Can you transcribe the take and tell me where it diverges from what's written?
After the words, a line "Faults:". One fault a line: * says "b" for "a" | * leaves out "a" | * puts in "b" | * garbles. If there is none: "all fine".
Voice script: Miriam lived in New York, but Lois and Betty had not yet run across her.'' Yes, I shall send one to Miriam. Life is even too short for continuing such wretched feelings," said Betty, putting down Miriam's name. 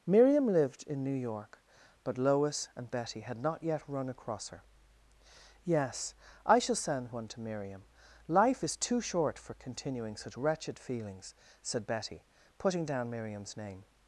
Miriam lived in New York, but Lois and Betty had not yet run across her.'' Yes, I shall send one to Miriam. Life is too short for continuing such wretched feelings," said Betty, putting down Miriam's name.
Faults:
* leaves out "even"